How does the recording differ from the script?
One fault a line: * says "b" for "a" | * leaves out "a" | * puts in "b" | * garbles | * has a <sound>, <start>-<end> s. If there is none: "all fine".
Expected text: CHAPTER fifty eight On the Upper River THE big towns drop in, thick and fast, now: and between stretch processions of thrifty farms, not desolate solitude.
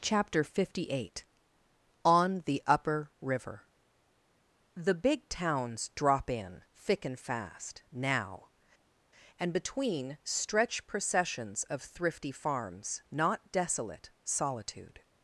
all fine